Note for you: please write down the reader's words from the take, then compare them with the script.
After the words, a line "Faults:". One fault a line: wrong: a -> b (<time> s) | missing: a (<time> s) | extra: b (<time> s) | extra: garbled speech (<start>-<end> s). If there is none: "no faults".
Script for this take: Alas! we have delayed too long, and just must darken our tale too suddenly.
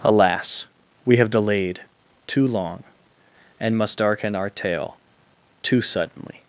Alas! we have delayed too long, and must darken our tale too suddenly.
Faults:
missing: just (3.8 s)